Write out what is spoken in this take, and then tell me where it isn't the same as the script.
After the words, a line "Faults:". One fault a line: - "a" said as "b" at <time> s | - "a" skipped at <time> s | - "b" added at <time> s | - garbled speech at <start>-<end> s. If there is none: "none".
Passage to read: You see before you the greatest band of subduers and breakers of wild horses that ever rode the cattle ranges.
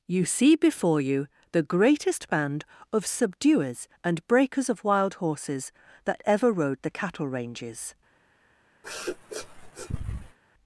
You see before you the greatest band of subduers and breakers of wild horses that ever rode the cattle ranges.
Faults:
none